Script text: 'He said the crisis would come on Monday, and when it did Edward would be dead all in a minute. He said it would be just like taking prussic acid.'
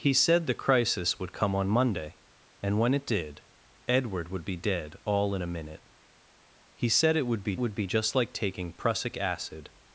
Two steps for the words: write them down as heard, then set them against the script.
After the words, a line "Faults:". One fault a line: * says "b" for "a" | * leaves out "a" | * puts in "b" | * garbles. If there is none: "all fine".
'He said the crisis would come on Monday, and when it did Edward would be dead all in a minute. He said it would be would be just like taking prussic acid.'
Faults:
* puts in "would be"